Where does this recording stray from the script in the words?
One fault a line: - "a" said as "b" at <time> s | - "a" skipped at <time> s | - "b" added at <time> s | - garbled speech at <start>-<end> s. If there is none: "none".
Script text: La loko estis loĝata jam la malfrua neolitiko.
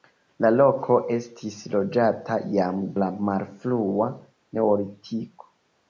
none